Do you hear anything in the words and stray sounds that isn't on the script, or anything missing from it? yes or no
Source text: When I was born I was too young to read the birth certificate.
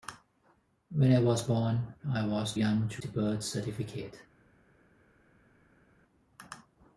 yes